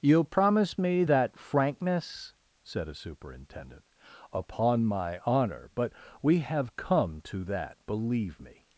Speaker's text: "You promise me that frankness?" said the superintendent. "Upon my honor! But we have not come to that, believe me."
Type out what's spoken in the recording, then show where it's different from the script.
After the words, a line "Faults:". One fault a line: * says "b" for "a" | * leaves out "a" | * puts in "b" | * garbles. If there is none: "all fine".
"You promise me that frankness?" said a superintendent. "Upon my honor! But we have come to that, believe me."
Faults:
* says "a" for "the"
* leaves out "not"